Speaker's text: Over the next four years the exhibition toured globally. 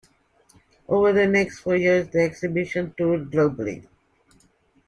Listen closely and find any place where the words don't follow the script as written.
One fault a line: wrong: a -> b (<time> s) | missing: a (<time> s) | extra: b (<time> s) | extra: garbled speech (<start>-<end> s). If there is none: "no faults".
no faults